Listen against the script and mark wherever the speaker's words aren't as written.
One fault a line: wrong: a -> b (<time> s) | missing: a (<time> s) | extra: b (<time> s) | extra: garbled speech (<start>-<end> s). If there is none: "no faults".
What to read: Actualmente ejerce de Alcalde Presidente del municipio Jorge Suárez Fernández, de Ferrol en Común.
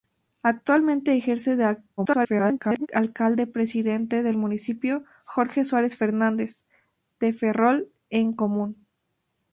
extra: garbled speech (2.0-2.9 s)